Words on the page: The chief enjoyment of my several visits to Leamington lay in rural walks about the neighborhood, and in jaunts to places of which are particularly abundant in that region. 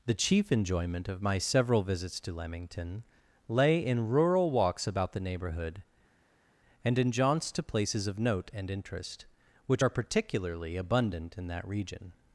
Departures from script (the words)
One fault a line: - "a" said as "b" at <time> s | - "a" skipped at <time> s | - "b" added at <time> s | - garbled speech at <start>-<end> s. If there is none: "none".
- "note and interest" added at 8.2 s